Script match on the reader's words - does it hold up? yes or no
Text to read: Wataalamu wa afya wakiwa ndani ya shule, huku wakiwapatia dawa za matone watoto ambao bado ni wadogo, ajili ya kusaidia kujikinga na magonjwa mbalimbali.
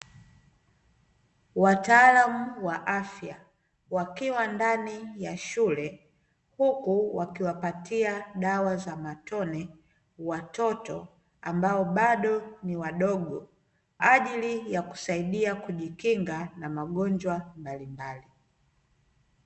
yes